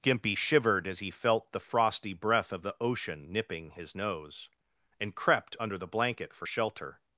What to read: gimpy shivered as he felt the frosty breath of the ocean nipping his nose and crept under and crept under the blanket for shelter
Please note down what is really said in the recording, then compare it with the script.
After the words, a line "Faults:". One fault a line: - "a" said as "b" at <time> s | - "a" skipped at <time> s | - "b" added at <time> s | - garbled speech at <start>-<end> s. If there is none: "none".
gimpy shivered as he felt the frosty breath of the ocean nipping his nose and crept under the blanket for shelter
Faults:
- "and crept under" skipped at 5.8 s